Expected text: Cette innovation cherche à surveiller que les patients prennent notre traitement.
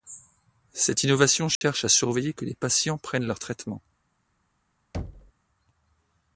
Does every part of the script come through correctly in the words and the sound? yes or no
no